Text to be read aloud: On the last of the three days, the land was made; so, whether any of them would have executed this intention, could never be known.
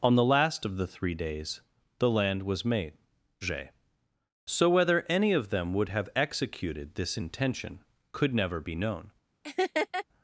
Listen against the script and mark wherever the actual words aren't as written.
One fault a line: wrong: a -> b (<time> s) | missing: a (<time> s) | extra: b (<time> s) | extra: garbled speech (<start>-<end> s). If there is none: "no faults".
no faults